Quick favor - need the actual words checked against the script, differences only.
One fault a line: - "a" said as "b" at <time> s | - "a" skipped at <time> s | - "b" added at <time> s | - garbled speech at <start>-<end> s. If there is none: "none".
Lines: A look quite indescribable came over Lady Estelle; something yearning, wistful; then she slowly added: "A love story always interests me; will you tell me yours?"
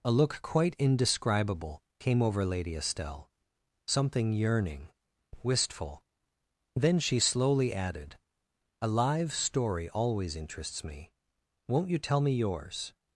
- "love" said as "live" at 8.9 s
- "will" said as "won't" at 11.7 s